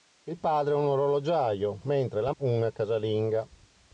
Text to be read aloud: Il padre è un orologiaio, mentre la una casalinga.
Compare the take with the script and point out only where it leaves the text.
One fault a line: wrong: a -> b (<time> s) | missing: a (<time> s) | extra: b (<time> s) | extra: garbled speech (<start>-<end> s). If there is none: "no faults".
no faults